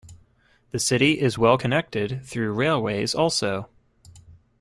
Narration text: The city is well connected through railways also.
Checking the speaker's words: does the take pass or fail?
pass